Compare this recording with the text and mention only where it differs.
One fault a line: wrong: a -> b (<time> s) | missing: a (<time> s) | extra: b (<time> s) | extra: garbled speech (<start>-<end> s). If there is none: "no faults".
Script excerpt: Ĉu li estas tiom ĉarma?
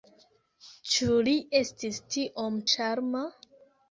wrong: estas -> estis (1.6 s)